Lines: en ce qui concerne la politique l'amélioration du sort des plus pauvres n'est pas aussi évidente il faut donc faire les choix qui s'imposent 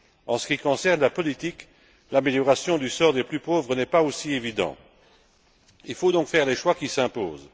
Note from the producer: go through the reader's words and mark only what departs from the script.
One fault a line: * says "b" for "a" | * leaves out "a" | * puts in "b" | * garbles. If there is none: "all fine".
all fine